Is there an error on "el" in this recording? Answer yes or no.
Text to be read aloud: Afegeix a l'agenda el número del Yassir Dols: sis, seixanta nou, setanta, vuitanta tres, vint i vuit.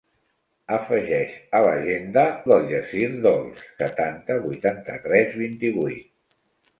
yes